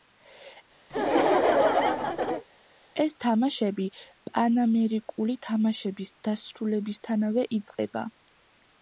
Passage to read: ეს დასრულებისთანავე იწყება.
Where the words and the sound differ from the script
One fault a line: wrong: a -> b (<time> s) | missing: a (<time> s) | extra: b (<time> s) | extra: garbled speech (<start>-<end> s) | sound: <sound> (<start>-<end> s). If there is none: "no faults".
sound: laugh (0.9-2.4 s)
extra: თამაშები პანამერიკული თამაშების (3.2 s)